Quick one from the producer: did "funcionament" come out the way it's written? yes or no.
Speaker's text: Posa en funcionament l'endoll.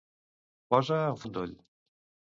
no